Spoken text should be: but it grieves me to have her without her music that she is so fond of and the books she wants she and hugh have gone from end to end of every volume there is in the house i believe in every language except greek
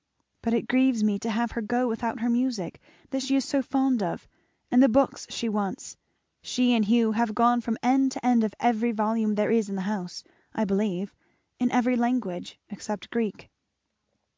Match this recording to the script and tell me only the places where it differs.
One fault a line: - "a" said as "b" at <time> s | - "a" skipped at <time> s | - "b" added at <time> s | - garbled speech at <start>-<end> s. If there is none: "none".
- "go" added at 1.6 s